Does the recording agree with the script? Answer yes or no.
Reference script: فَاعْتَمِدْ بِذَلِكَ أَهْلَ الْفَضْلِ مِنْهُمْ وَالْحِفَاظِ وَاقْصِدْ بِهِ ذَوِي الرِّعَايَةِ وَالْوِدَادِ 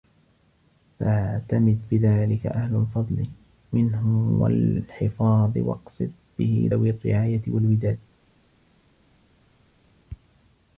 yes